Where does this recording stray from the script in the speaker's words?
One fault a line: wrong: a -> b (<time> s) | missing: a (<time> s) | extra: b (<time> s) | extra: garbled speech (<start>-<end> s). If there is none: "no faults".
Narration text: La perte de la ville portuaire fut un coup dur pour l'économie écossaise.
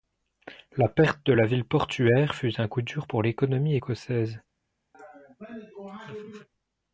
no faults